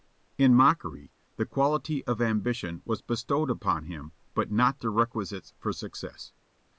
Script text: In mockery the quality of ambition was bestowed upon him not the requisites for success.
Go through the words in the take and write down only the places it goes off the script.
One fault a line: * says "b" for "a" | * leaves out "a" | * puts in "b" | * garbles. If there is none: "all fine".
* puts in "but"